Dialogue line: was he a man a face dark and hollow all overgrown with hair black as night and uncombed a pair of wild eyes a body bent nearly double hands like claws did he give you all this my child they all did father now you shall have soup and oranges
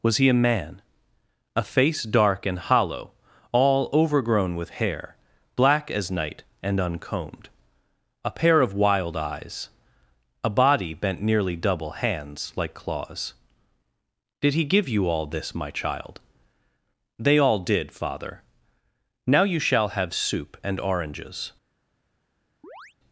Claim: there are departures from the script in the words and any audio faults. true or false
true